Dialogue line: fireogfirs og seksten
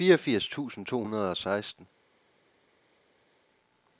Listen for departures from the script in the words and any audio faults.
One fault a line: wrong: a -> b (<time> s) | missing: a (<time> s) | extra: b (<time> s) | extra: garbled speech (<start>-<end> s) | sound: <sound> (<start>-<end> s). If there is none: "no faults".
extra: tusind to hundrede (0.5 s)